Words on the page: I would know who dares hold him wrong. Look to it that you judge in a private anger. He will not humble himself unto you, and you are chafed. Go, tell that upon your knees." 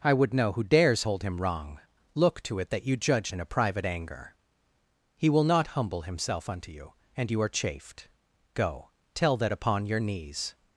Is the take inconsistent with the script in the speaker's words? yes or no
no